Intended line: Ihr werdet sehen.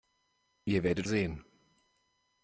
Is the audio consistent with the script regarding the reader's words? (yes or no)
yes